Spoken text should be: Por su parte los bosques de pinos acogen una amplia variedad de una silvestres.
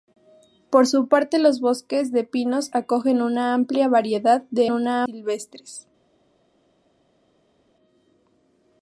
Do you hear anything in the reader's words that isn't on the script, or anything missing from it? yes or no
no